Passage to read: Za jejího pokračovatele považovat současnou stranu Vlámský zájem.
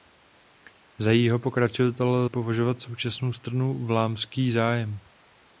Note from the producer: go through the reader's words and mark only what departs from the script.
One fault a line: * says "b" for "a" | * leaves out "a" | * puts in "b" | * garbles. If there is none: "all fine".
all fine